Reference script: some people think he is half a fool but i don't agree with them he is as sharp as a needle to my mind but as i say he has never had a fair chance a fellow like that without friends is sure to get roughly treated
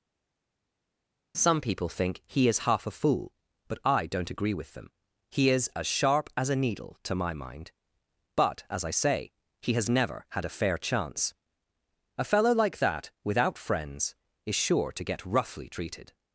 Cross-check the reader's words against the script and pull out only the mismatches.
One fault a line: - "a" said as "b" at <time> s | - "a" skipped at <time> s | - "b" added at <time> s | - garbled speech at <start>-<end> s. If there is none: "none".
none